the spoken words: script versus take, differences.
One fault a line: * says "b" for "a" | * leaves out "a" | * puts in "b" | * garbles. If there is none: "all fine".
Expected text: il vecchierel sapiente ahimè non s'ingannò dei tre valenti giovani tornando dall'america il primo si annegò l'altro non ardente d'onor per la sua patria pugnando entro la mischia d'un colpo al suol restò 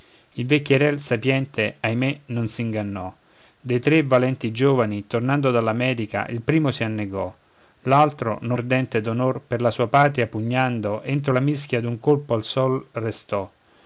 all fine